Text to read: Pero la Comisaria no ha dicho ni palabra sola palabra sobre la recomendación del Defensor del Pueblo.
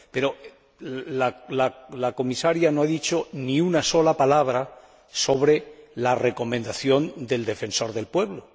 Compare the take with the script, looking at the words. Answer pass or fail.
fail